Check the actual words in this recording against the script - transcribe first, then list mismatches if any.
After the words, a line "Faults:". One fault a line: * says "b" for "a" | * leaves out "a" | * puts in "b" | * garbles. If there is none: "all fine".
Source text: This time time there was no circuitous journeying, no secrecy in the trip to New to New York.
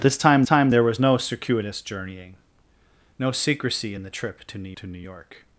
This time time there was no circuitous journeying, no secrecy in the trip to New to New York.
Faults:
all fine